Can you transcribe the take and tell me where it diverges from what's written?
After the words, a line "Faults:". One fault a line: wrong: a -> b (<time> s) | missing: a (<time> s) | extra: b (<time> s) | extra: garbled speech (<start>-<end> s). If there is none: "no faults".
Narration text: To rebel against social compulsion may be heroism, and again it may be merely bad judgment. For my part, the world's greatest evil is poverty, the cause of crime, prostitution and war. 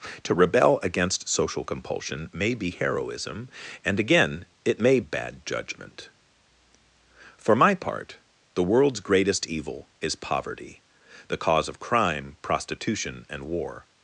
To rebel against social compulsion may be heroism, and again it may bad judgment. For my part, the world's greatest evil is poverty, the cause of crime, prostitution and war.
Faults:
missing: be merely (5.0 s)